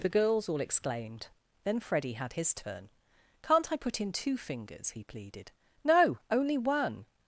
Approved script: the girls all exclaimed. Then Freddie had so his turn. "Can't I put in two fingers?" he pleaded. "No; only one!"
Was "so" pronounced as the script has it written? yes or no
no